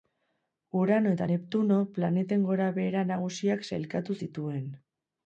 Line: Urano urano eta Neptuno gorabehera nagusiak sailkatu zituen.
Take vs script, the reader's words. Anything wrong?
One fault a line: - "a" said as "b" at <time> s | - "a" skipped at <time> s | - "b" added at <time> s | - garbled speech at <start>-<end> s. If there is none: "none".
- "urano" skipped at 1.1 s
- "planeten" added at 1.9 s